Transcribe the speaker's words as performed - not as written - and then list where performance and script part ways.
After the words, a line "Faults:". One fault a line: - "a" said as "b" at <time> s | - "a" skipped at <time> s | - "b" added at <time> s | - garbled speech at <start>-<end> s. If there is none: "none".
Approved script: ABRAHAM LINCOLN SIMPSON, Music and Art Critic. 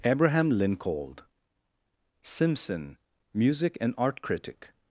ABRAHAM LINCOLN SIMPSON, Music and Art Critic.
Faults:
none